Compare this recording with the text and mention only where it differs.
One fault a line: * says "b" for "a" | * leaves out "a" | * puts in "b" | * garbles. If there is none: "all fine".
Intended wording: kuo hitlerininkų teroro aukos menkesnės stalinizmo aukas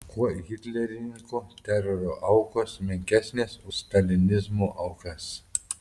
all fine